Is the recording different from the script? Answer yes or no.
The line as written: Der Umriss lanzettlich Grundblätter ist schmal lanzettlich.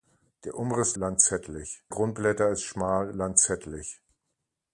no